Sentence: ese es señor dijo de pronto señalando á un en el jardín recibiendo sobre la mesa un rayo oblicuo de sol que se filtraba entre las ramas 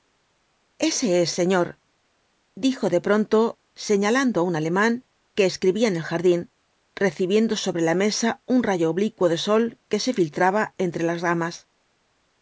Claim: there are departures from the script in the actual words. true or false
true